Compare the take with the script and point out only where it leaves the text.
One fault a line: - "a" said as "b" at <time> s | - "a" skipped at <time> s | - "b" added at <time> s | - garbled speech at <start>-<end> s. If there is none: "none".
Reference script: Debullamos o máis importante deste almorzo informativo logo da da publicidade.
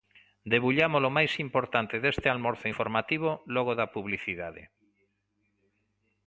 - "da" skipped at 3.9 s